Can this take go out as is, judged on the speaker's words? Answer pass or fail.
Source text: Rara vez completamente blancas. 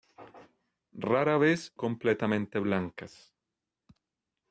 pass